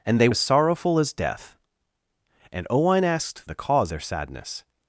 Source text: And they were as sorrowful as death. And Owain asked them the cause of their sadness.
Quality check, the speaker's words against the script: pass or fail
fail